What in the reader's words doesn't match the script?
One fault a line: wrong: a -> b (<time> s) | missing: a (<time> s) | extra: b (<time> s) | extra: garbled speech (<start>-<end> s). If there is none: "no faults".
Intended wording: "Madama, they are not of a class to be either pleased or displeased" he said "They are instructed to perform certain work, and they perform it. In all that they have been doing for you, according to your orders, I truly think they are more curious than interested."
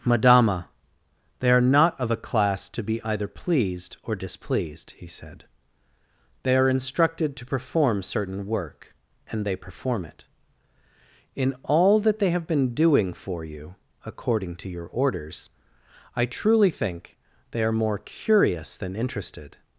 no faults